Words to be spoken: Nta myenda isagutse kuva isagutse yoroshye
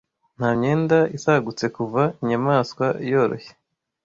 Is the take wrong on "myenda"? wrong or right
right